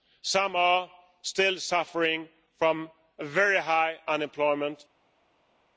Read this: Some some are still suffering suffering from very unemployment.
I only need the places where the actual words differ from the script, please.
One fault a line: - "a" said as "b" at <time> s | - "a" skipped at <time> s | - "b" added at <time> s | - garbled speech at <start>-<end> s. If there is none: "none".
- "some" skipped at 0.6 s
- "suffering" skipped at 2.3 s
- "high" added at 3.6 s